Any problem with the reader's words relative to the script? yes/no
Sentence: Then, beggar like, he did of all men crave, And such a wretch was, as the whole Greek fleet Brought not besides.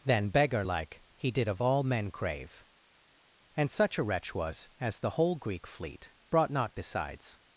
no